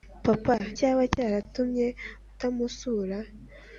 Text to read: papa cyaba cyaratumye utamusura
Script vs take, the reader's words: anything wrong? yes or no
no